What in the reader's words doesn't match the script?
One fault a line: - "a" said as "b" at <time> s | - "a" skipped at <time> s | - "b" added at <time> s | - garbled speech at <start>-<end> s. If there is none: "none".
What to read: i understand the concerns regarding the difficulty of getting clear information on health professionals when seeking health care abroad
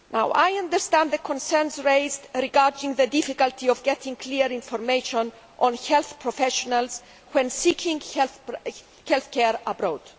- "raised" added at 1.8 s